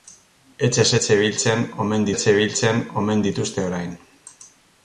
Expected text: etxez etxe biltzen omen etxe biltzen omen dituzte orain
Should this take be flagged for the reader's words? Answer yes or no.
no